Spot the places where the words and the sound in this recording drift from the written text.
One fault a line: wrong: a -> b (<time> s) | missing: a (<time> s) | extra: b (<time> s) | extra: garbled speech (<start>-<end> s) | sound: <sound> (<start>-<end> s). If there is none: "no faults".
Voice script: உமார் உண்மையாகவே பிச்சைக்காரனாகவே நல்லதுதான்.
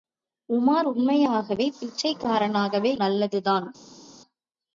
no faults